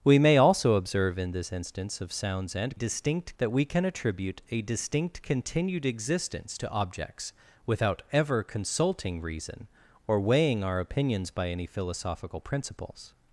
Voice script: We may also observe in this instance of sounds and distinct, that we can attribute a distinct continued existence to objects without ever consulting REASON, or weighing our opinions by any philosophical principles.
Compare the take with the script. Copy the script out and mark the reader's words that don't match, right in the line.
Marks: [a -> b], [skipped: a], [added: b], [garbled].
We may also observe in this instance of sounds and distinct, that we can attribute a distinct continued existence to objects without ever consulting REASON, or weighing our opinions by any philosophical principles.